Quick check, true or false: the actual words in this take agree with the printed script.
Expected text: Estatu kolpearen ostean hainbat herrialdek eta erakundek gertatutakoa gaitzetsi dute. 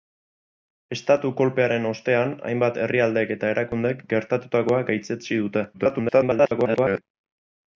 false